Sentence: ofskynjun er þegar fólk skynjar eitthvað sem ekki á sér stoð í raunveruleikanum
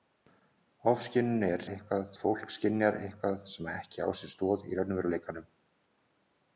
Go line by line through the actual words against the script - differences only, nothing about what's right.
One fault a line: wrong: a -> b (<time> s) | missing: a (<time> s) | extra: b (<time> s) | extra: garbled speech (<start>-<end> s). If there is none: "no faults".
wrong: þegar -> eitthvað (1.7 s)